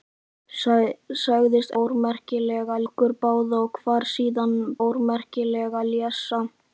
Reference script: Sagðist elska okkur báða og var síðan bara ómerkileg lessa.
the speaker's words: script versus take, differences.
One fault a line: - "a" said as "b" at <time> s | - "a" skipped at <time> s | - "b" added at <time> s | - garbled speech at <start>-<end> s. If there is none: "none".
- "elska" said as "ómerkileg" at 1.8 s
- "bara" skipped at 4.6 s